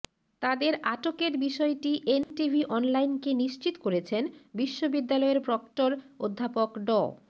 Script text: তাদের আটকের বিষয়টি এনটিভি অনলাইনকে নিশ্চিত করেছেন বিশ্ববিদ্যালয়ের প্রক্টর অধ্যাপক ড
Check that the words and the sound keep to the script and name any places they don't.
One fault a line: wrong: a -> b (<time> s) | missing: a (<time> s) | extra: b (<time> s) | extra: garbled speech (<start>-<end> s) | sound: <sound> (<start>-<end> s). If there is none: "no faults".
sound: dropout (2.2-2.3 s)